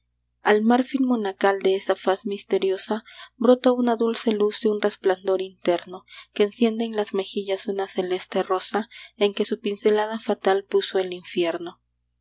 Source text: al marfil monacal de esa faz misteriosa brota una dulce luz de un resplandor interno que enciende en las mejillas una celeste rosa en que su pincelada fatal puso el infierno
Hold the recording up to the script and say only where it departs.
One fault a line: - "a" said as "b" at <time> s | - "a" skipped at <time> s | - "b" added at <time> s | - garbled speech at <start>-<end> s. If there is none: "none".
none